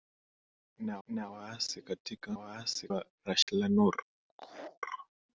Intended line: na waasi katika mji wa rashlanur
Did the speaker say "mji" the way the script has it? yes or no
no